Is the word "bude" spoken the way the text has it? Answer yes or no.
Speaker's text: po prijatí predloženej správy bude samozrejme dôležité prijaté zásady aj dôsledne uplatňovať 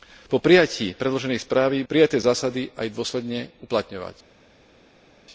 no